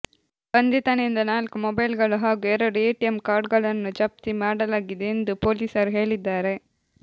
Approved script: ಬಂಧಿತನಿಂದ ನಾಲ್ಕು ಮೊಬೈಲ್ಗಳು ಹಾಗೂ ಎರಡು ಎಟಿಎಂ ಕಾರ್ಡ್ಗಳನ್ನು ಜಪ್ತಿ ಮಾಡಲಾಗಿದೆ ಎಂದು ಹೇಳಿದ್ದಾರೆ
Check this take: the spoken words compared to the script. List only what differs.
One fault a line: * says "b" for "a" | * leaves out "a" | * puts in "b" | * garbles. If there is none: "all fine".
* puts in "ಪೊಲೀಸರು"